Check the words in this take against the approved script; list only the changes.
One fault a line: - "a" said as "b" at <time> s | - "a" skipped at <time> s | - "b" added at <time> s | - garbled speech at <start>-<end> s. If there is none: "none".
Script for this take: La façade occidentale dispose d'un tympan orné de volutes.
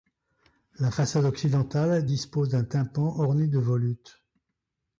none